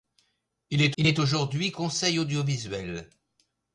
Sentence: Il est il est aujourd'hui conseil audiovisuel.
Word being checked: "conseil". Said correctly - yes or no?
yes